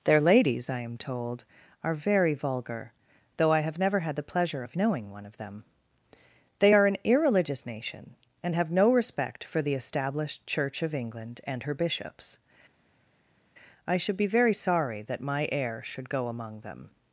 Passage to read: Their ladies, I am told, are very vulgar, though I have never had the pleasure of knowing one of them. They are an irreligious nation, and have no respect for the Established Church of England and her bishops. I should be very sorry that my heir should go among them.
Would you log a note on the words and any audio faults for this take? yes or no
no